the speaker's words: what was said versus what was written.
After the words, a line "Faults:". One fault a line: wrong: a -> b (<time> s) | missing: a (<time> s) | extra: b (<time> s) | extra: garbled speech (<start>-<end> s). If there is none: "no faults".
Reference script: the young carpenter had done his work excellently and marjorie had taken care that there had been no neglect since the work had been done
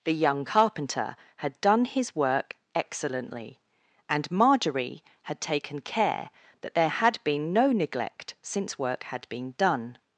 the young carpenter had done his work excellently and marjorie had taken care that there had been no neglect since work had been done
Faults:
missing: the (8.8 s)